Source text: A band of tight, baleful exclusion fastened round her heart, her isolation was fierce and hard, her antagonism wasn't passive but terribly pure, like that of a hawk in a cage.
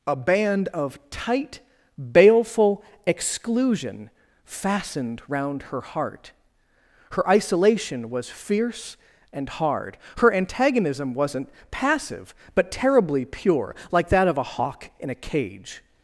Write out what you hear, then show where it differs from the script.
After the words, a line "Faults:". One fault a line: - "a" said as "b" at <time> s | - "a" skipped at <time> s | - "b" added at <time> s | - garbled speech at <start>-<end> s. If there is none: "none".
A band of tight, baleful exclusion fastened round her heart, her isolation was fierce and hard, her antagonism wasn't passive but terribly pure, like that of a hawk in a cage.
Faults:
none